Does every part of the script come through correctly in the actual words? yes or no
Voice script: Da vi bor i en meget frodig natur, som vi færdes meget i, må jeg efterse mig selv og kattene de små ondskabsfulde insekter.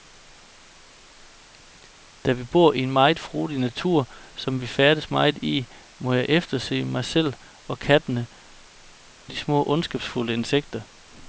yes